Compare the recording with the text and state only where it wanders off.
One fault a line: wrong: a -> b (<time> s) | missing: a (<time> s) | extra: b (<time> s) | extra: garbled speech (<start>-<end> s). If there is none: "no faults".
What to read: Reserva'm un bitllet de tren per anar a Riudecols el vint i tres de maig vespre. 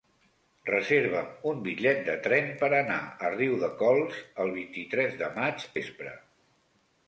no faults